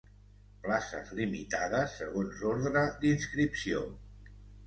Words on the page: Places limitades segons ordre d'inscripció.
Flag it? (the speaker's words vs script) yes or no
no